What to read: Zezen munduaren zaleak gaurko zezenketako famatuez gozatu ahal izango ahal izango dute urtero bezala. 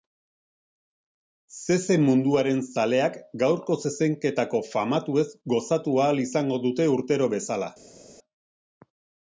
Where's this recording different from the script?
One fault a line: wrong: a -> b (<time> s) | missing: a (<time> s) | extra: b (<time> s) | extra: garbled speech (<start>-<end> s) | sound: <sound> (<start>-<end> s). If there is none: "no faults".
missing: ahal izango (6.6 s)